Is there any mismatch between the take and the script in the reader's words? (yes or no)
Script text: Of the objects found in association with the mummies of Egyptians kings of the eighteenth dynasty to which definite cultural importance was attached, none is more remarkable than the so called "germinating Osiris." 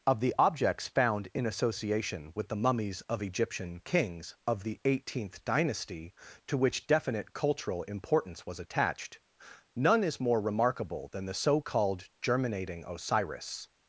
yes